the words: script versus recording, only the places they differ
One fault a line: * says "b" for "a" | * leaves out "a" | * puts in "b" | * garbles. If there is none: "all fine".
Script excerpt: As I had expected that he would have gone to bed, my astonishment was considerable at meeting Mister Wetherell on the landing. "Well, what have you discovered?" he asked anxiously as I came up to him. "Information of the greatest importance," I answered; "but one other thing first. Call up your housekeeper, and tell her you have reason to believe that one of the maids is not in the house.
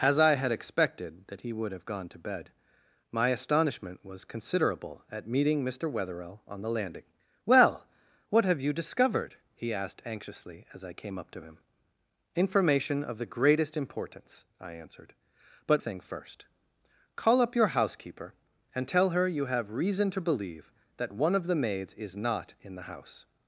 * leaves out "one other"